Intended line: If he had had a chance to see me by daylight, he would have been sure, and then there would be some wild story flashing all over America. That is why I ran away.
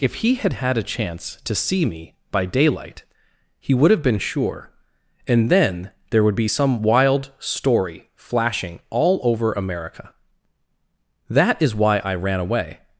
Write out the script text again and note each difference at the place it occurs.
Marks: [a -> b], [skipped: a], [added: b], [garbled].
If he had had a chance to see me by daylight, he would have been sure, and then there would be some wild story flashing all over America. That is why I ran away.